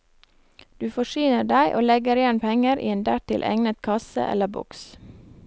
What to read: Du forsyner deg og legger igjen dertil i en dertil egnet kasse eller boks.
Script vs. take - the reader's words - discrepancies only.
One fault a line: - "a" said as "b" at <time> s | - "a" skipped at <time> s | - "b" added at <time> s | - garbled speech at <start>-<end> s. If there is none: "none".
- "dertil" said as "penger" at 2.4 s